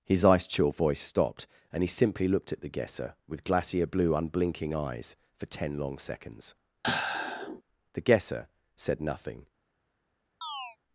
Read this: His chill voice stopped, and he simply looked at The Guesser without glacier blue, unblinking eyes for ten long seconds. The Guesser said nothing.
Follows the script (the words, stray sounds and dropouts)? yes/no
no